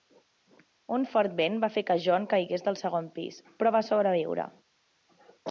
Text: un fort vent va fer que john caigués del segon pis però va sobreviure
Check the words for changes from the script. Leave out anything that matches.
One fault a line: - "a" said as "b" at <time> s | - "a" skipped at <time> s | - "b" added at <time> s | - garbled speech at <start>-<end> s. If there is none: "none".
none